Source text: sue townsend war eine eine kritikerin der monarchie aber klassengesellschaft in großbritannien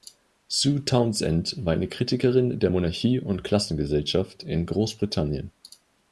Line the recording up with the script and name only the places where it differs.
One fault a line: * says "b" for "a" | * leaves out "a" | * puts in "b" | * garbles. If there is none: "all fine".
* leaves out "eine"
* says "und" for "aber"